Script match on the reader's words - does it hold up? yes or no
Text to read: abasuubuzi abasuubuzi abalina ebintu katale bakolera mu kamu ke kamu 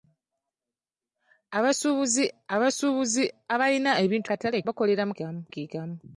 yes